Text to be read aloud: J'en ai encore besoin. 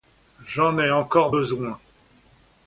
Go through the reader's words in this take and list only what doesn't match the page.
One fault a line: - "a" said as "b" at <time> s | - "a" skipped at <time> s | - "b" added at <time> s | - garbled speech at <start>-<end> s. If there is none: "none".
none